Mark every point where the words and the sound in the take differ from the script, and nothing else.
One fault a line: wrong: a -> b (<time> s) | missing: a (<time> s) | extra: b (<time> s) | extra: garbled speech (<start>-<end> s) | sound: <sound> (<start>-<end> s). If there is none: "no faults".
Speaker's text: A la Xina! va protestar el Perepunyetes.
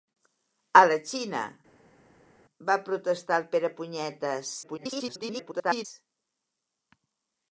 extra: garbled speech (4.6-5.9 s)